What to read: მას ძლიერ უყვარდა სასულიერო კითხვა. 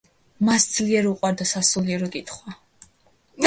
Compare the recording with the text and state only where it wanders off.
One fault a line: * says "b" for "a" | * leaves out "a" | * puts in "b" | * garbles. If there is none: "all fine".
all fine